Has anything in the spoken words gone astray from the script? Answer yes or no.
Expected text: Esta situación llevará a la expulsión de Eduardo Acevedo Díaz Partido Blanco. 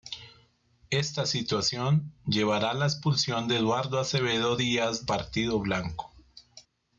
no